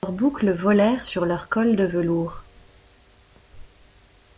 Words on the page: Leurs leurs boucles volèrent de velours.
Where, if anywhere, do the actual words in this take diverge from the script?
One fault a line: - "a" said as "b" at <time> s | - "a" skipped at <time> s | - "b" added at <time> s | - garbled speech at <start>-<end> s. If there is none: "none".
- "leurs" skipped at 0.1 s
- "sur leurs cols" added at 1.0 s